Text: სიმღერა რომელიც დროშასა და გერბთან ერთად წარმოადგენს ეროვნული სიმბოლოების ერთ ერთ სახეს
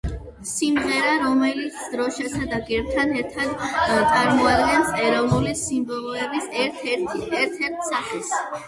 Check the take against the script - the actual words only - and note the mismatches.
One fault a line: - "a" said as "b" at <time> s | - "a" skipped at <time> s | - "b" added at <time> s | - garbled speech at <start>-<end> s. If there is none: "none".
none